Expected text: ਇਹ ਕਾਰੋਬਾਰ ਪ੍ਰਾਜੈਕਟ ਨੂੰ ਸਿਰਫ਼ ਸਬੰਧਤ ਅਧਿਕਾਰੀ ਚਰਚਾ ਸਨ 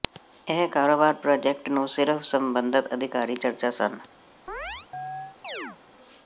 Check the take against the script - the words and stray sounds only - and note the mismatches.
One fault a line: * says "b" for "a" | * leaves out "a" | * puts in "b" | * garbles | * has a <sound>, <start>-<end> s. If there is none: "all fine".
* has a chirp, 4.5-5.8 s